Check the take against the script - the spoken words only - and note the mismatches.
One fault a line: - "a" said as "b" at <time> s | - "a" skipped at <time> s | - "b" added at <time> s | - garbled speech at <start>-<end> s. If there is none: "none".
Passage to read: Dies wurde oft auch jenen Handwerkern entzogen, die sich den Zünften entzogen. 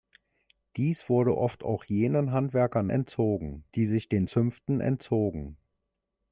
none